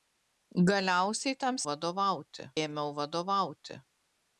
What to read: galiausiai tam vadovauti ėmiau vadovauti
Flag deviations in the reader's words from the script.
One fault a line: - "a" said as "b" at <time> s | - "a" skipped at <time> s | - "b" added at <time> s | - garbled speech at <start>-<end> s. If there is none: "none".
none